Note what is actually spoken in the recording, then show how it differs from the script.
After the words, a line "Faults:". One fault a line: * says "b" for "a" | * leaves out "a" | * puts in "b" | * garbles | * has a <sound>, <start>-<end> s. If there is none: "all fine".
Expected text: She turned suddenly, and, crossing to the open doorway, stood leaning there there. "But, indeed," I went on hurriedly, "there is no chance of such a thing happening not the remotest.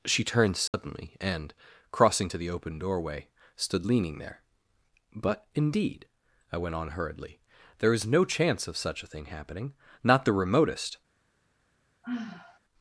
She turned suddenly, and, crossing to the open doorway, stood leaning there. "But, indeed," I went on hurriedly, "there is no chance of such a thing happening not the remotest.
Faults:
* has a dropout, 0.7-0.7 s
* leaves out "there"
* has a sigh, 12.0-12.6 s